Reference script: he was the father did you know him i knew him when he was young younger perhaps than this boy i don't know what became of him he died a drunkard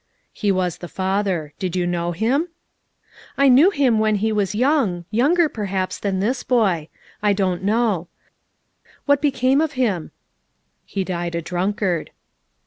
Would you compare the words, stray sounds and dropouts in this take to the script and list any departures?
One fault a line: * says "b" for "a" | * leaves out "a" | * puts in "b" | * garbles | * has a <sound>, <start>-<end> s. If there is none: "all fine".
all fine